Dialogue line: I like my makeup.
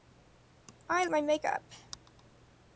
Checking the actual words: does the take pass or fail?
fail